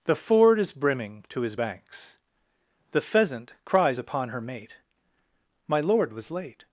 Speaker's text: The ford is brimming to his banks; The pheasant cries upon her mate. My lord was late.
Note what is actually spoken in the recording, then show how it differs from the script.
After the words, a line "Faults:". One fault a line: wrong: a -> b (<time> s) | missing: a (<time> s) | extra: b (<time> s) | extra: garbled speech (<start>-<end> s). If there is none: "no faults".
The ford is brimming to his banks; The pheasant cries upon her mate. My lord was late.
Faults:
no faults